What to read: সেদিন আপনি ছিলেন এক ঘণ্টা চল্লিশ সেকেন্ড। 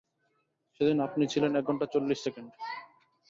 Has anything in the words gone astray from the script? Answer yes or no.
no